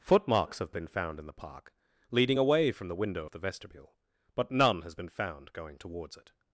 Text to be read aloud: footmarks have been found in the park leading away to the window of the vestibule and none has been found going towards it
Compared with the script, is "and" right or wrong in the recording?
wrong